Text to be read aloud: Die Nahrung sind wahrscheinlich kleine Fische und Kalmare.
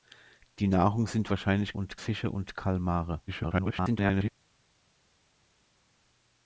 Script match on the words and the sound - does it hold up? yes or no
no